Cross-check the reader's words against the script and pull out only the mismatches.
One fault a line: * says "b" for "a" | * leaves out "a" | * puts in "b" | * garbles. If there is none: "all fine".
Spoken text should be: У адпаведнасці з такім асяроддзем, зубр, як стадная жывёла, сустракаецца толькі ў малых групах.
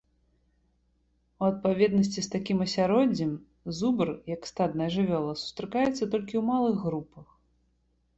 all fine